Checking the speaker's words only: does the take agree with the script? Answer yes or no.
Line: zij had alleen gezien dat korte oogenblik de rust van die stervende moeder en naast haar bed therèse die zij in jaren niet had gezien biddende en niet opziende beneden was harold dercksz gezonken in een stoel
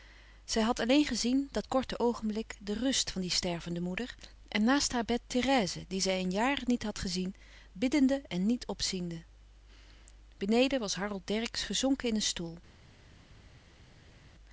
yes